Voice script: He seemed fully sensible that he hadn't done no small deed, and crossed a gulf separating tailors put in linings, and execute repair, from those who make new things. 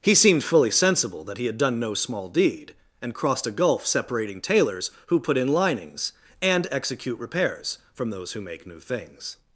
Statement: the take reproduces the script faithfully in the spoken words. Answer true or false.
false